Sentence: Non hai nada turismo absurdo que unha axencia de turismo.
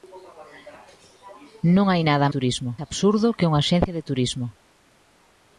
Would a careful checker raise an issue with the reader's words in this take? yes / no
no